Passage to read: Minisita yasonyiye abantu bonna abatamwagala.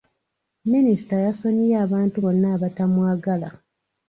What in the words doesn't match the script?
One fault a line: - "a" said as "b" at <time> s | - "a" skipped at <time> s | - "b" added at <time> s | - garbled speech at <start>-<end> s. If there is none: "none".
none